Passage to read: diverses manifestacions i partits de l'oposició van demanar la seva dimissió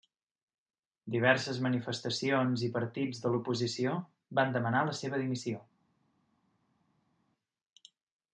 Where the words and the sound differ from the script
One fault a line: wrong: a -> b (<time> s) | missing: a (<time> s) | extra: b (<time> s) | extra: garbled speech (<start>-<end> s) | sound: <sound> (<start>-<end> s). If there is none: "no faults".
no faults